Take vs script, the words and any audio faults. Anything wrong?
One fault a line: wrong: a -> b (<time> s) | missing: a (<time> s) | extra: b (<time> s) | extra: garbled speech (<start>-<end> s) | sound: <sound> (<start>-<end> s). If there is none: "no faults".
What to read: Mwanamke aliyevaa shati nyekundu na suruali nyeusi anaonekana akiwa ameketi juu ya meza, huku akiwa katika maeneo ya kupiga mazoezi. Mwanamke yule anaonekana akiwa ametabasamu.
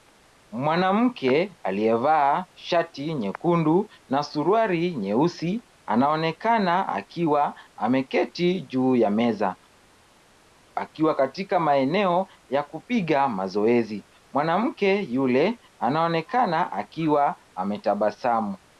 missing: huku (9.6 s)